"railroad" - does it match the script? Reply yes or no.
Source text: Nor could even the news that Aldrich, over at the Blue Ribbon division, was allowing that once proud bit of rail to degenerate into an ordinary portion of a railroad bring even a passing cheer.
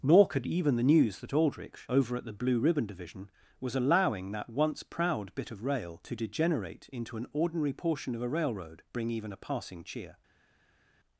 yes